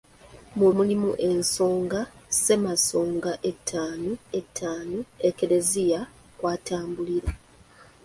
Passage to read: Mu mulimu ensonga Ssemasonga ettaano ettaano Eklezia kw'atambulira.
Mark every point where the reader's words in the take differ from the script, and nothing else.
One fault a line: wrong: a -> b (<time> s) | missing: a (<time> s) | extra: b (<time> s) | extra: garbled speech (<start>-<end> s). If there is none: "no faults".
no faults